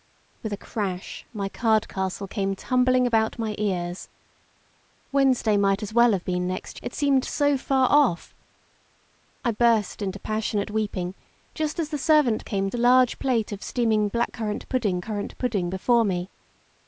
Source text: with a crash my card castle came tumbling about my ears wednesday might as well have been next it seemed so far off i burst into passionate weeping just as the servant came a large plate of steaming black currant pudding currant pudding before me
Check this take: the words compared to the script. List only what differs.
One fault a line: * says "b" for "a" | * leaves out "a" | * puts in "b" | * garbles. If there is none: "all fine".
all fine